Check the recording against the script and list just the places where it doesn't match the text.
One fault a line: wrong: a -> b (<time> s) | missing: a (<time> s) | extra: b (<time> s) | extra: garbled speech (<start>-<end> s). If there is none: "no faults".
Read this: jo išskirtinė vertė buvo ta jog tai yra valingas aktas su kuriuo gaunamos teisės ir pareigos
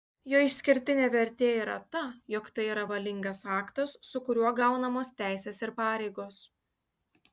wrong: buvo -> yra (1.6 s)